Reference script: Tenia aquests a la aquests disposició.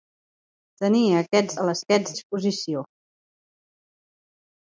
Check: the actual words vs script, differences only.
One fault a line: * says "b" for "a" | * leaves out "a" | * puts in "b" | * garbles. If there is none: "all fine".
all fine